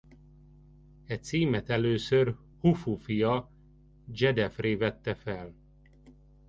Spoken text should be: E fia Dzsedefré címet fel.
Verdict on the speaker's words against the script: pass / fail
fail